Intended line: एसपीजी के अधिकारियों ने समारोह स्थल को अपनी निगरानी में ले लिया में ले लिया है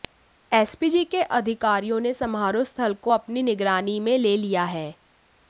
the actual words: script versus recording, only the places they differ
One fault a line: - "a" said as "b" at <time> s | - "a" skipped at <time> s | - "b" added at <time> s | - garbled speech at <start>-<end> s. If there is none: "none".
- "में ले लिया" skipped at 4.6 s